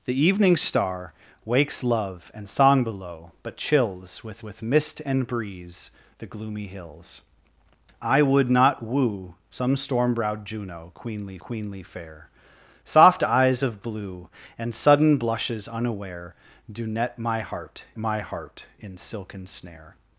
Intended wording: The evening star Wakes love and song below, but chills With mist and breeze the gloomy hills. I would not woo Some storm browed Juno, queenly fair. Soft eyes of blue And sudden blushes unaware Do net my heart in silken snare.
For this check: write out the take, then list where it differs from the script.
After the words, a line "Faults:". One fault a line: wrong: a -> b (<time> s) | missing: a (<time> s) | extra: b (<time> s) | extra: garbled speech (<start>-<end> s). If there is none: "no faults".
The evening star Wakes love and song below, but chills With With mist and breeze the gloomy hills. I would not woo Some storm browed Juno, queenly queenly fair. Soft eyes of blue And sudden blushes unaware Do net my heart my heart in silken snare.
Faults:
extra: With (4.4 s)
extra: queenly (11.4 s)
extra: my heart (18.0 s)